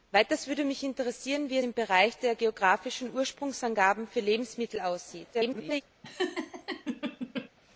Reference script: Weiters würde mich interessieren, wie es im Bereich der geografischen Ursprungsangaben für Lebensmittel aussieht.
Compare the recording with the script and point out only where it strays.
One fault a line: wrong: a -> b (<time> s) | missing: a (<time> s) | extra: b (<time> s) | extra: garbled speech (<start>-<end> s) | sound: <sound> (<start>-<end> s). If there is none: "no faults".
missing: es (1.6 s)
extra: garbled speech (5.3-5.8 s)
sound: laugh (6.0-7.5 s)